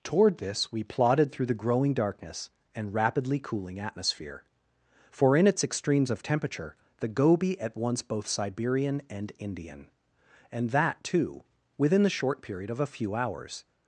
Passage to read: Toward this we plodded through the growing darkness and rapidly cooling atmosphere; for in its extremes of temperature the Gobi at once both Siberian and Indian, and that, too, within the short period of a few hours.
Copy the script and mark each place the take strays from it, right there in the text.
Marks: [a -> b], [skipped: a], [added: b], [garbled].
Toward this we plodded through the growing darkness and rapidly cooling atmosphere; for in its extremes of temperature the Gobi at once both Siberian and Indian, and that, too, within the short period of a few hours.